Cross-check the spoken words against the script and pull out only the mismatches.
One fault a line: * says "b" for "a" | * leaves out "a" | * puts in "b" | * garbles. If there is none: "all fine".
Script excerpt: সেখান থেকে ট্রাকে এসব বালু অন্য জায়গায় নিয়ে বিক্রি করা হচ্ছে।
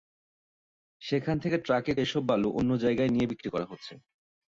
all fine